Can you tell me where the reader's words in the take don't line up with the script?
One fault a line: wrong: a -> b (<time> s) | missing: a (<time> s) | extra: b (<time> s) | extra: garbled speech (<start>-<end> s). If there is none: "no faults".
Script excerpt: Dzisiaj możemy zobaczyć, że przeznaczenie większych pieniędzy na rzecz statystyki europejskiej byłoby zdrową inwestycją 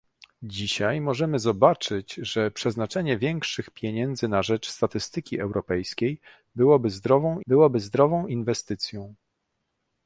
extra: byłoby zdrową (7.5 s)